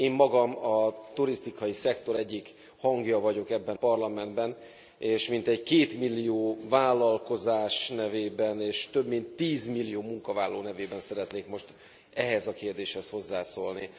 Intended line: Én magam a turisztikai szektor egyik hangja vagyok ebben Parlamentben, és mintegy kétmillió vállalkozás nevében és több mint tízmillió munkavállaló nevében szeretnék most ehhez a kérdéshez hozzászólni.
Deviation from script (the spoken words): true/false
false